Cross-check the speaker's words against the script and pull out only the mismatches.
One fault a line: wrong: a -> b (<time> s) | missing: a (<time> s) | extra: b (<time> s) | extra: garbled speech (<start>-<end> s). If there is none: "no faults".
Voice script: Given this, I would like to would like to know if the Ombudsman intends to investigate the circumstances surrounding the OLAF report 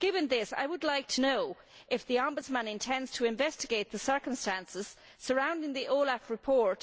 missing: would like to (1.2 s)